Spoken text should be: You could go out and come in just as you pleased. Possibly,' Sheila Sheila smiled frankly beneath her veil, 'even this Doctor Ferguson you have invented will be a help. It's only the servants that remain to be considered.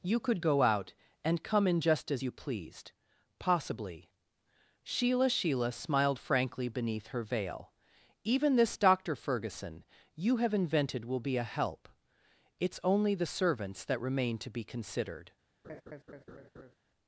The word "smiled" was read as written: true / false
true